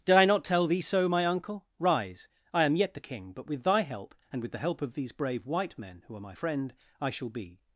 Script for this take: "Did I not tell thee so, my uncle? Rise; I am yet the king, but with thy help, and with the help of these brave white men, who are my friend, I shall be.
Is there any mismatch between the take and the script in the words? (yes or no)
no